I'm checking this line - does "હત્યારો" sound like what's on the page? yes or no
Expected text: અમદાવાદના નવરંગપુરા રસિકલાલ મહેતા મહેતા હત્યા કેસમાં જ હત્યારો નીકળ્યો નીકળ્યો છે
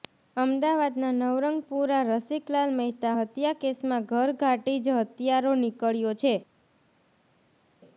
yes